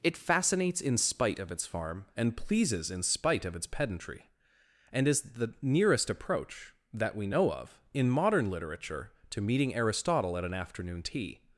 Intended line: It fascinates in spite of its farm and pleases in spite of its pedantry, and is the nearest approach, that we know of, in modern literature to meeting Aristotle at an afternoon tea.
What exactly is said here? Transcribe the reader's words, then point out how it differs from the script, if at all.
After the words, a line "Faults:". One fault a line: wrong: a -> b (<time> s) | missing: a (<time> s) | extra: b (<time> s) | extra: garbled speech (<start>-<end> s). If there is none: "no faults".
It fascinates in spite of its farm and pleases in spite of its pedantry, and is the nearest approach, that we know of, in modern literature to meeting Aristotle at an afternoon tea.
Faults:
no faults